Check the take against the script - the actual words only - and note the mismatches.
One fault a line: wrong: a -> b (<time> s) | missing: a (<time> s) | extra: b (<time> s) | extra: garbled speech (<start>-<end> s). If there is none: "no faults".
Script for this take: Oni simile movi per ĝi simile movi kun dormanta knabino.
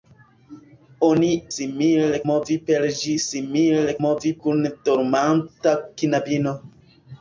no faults